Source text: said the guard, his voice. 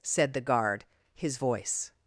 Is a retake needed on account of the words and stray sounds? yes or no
no